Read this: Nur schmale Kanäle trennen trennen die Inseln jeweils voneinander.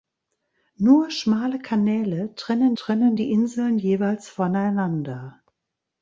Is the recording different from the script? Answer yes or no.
no